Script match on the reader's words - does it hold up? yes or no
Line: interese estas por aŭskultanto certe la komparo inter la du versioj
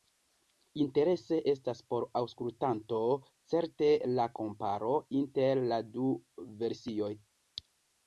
yes